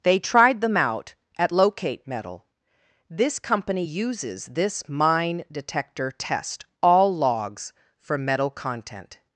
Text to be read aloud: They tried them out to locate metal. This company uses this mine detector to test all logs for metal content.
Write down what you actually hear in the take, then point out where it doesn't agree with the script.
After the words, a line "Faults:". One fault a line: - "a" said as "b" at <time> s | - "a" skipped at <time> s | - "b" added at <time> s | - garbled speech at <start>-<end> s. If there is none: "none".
They tried them out at locate metal. This company uses this mine detector test all logs for metal content.
Faults:
- "to" said as "at" at 1.4 s
- "to" skipped at 6.1 s